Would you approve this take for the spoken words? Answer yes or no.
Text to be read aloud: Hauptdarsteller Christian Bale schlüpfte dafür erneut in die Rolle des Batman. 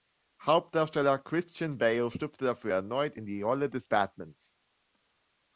yes